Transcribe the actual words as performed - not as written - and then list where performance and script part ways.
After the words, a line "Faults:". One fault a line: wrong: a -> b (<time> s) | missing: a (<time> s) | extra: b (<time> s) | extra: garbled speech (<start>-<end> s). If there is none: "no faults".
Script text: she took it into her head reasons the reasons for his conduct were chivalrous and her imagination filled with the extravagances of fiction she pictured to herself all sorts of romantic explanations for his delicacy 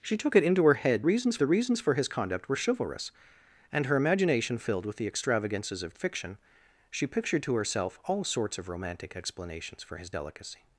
she took it into her head reasons the reasons for his conduct were chivalrous and her imagination filled with the extravagances of fiction she pictured to herself all sorts of romantic explanations for his delicacy
Faults:
no faults